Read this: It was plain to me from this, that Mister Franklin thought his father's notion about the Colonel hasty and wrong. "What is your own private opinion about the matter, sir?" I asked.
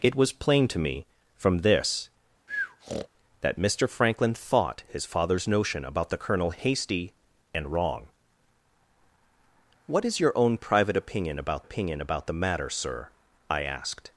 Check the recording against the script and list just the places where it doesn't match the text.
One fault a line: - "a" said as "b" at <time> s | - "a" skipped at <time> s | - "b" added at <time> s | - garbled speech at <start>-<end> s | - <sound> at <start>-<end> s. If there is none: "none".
- breath at 2.5-3.1 s
- "opinion about" added at 11.6 s